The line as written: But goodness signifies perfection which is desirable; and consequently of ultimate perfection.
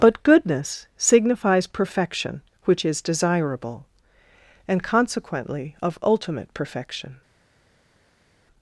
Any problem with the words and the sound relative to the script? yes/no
no